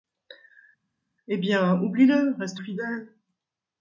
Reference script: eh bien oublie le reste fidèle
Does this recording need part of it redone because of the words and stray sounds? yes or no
no